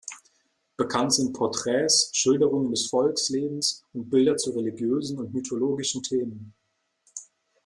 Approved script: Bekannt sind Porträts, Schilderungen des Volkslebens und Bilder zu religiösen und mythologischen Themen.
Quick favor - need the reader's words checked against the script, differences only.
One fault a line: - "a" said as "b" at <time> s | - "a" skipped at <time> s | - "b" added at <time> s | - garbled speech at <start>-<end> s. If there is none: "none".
none